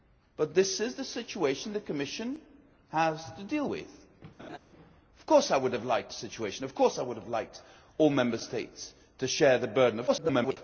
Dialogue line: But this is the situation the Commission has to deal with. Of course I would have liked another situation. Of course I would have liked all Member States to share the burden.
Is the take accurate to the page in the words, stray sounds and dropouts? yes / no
no